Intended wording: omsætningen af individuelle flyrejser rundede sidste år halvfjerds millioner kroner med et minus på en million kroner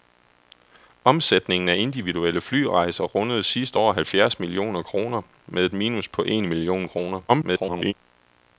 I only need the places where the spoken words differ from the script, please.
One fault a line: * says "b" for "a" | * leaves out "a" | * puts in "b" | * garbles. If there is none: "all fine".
* garbles